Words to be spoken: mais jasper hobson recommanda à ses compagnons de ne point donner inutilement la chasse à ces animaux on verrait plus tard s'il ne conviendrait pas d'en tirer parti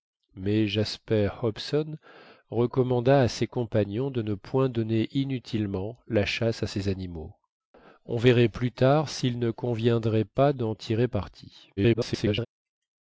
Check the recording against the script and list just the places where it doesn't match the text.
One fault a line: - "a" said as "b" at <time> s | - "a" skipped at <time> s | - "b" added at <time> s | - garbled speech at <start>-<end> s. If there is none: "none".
- garbled speech at 11.8-12.5 s